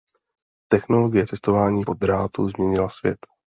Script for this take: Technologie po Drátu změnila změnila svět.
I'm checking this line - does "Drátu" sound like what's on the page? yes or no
yes